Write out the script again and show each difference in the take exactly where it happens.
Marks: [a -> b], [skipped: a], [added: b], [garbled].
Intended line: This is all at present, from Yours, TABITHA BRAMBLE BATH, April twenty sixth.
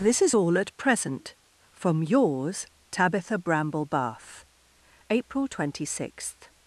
This is all at present, from Yours, TABITHA BRAMBLE BATH, April twenty sixth.